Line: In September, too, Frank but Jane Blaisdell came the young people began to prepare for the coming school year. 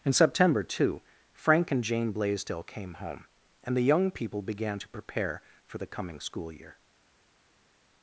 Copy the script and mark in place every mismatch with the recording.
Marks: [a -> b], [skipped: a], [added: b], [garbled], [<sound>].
In September, too, Frank [but -> and] Jane Blaisdell came [added: home and] the young people began to prepare for the coming school year.